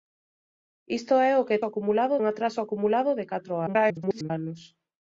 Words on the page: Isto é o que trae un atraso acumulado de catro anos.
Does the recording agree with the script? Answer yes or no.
no